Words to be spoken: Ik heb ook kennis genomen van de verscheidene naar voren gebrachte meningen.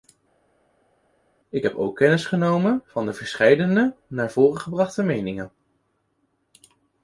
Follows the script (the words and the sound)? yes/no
yes